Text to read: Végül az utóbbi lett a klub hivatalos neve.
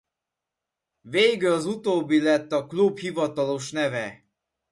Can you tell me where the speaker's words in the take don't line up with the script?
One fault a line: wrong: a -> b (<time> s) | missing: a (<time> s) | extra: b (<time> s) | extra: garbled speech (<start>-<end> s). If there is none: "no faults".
no faults